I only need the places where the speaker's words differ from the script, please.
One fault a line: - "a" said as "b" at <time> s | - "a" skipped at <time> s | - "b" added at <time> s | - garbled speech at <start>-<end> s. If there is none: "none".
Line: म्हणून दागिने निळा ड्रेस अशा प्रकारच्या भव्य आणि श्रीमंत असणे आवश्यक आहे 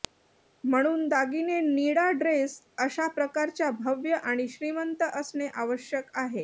none